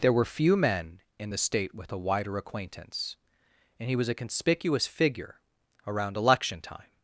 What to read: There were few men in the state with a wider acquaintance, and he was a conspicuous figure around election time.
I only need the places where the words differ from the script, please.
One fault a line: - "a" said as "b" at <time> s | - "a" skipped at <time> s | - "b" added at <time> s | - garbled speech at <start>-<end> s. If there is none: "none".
none